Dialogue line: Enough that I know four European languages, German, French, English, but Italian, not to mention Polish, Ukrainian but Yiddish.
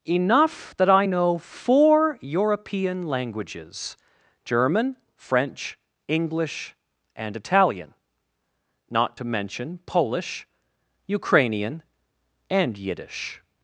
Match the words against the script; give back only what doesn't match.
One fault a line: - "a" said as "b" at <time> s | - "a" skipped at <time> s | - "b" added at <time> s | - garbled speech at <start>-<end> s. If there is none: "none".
- "but" said as "and" at 7.1 s
- "but" said as "and" at 12.5 s